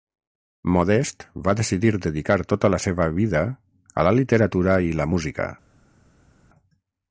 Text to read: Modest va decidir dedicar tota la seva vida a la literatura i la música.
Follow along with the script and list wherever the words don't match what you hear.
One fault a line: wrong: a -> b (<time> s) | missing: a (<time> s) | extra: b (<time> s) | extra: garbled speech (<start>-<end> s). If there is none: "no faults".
no faults